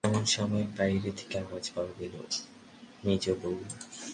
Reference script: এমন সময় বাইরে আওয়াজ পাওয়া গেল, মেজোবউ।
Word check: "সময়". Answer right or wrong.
right